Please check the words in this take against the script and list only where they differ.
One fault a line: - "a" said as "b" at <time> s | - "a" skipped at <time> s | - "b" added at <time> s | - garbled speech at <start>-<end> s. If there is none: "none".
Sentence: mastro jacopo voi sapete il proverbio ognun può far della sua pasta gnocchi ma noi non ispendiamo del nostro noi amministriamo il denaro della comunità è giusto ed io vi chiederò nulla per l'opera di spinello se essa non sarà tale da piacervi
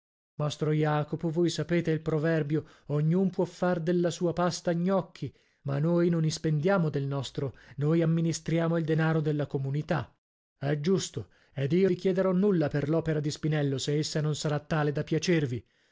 none